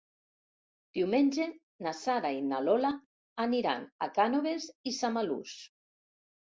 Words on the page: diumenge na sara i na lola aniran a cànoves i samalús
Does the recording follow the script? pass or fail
pass